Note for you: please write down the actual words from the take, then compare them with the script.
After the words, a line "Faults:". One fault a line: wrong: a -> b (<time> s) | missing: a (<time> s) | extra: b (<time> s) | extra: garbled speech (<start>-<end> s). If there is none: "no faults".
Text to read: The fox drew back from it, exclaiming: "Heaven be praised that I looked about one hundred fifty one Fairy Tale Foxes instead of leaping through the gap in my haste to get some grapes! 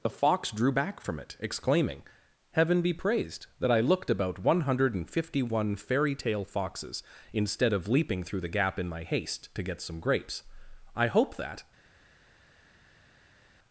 The fox drew back from it, exclaiming: "Heaven be praised that I looked about one hundred fifty one Fairy Tale Foxes instead of leaping through the gap in my haste to get some grapes! I hope that
Faults:
extra: I hope that (11.0 s)